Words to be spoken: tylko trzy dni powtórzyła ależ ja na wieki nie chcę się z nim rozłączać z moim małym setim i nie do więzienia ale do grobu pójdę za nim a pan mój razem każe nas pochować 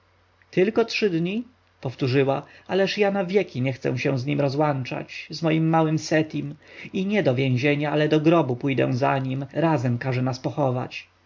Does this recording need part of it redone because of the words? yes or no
yes